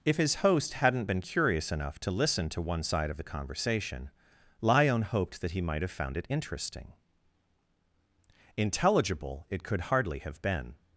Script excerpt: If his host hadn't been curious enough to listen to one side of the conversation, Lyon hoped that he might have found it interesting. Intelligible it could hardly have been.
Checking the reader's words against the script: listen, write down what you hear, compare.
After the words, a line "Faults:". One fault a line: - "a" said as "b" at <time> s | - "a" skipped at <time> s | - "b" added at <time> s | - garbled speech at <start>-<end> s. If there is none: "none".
If his host hadn't been curious enough to listen to one side of the conversation, Lyon hoped that he might have found it interesting. Intelligible it could hardly have been.
Faults:
none